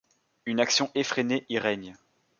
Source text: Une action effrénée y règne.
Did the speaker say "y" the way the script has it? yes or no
yes